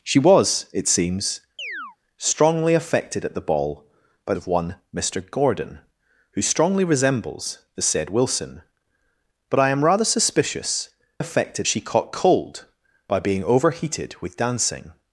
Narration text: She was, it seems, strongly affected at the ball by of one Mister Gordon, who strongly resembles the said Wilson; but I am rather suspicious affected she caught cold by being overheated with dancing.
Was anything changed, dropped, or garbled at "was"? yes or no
no